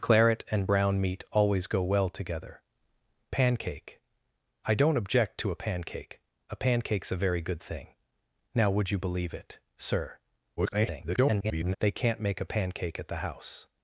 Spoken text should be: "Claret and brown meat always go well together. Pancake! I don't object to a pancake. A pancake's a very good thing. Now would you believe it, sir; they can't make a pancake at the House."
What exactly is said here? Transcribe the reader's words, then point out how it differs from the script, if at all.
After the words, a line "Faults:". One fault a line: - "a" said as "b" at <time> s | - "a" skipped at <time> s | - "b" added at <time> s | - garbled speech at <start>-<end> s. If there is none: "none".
"Claret and brown meat always go well together. Pancake! I don't object to a pancake. A pancake's a very good thing. Now would you believe it, sir; [garbled] they can't make a pancake at the House."
Faults:
- garbled speech at 10.6-11.8 s